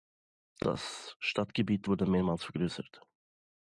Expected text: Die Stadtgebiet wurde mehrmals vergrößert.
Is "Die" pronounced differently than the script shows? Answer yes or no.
yes